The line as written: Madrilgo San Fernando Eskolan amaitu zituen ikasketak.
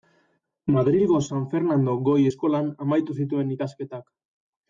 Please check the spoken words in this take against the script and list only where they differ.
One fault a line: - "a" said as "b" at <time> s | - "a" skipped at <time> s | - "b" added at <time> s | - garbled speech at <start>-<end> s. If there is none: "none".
- "Goi" added at 2.1 s